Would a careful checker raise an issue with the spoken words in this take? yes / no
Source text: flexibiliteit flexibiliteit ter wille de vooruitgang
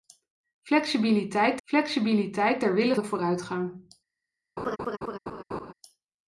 no